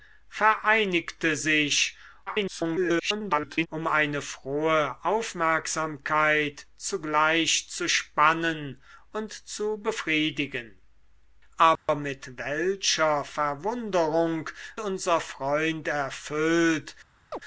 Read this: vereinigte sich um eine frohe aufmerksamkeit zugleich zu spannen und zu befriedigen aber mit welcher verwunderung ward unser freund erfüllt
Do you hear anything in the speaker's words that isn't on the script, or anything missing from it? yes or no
yes